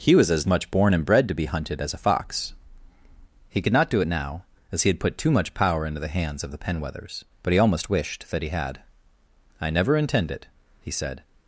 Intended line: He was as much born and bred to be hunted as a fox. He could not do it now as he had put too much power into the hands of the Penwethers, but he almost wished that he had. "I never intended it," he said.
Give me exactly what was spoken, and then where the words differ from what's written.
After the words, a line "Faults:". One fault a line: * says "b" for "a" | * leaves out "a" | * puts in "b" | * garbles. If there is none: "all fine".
He was as much born and bred to be hunted as a fox. He could not do it now as he had put too much power into the hands of the Penwethers, but he almost wished that he had. "I never intend it," he said.
Faults:
* says "intend" for "intended"